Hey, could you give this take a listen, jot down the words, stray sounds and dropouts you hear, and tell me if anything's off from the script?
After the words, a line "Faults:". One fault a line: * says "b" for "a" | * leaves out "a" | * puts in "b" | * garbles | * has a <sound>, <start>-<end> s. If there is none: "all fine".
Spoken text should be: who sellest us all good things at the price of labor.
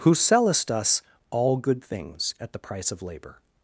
who sellest us all good things at the price of labor.
Faults:
all fine